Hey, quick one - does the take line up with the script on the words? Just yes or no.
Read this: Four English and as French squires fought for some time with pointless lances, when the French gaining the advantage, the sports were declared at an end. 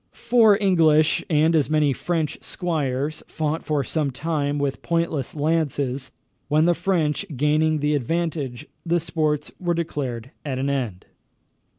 no